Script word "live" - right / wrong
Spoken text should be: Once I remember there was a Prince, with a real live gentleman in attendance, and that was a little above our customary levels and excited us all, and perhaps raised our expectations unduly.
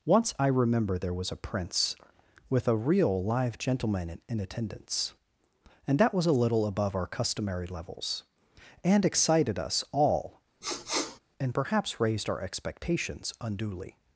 right